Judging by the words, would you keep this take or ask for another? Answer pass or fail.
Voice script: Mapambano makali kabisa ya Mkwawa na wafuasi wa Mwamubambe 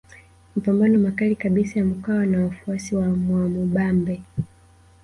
pass